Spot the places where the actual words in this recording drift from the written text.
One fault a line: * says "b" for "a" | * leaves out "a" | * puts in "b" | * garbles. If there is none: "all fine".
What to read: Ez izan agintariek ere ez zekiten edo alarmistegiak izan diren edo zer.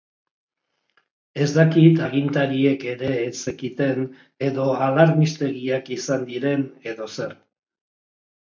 * says "dakit" for "izan"